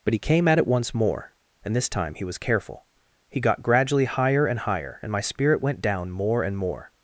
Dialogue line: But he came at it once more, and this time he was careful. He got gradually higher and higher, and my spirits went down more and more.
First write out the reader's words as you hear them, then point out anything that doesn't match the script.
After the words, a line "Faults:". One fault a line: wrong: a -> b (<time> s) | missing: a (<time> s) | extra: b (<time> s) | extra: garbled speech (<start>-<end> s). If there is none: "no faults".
But he came at it once more, and this time he was careful. He got gradually higher and higher, and my spirit went down more and more.
Faults:
wrong: spirits -> spirit (5.2 s)